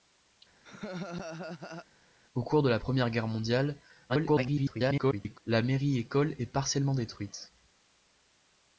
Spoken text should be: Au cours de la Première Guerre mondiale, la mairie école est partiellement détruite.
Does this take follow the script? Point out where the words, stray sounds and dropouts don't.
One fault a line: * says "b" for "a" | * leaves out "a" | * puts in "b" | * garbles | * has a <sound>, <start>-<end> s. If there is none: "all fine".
* has a laugh, 0.6-1.9 s
* garbles